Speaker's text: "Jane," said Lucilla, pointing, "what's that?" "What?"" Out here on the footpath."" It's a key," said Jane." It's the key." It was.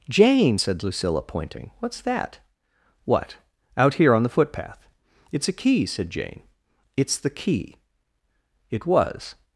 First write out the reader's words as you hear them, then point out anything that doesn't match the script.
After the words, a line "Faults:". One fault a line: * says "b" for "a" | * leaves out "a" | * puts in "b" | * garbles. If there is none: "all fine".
"Jane," said Lucilla, pointing, "what's that?" "What?"" Out here on the footpath."" It's a key," said Jane." It's the key." It was.
Faults:
all fine